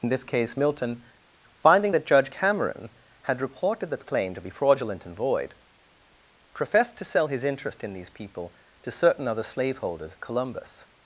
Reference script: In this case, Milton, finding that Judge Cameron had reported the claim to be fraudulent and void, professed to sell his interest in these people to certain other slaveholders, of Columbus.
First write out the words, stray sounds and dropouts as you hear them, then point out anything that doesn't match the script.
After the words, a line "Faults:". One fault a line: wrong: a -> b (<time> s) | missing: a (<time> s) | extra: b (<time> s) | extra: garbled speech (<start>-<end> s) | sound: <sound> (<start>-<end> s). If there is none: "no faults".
In this case, Milton, finding that Judge Cameron had reported the claim to be fraudulent and void, professed to sell his interest in these people to certain other slaveholders, Columbus.
Faults:
missing: of (10.2 s)